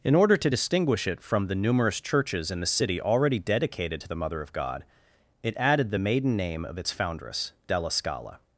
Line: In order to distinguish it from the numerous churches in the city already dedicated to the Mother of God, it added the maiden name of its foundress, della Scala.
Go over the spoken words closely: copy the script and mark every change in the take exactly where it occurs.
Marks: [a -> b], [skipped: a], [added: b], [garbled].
In order to distinguish it from the numerous churches in the city already dedicated to the Mother of God, it added the maiden name of its foundress, della Scala.